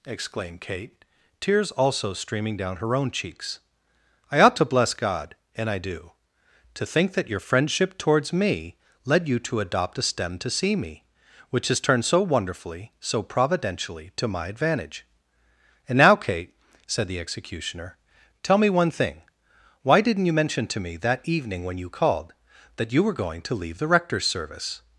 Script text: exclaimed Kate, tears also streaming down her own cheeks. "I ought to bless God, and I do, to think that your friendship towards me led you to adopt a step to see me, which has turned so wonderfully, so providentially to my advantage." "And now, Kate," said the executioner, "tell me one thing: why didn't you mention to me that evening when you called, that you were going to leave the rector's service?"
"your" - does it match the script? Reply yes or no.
yes